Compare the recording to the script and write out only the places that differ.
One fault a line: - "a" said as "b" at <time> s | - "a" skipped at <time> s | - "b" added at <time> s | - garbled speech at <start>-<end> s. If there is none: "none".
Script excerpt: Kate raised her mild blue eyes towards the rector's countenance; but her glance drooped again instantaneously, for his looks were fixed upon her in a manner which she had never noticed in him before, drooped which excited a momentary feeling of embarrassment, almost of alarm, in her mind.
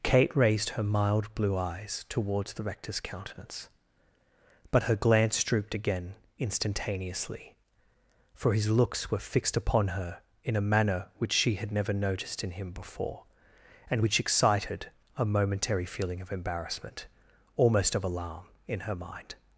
- "drooped" said as "and" at 13.9 s